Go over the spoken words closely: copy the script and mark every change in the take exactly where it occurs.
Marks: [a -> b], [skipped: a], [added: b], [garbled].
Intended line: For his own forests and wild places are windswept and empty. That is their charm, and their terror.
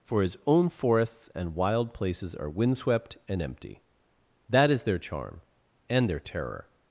For his own forests and wild places are windswept and empty. That is their charm, and their terror.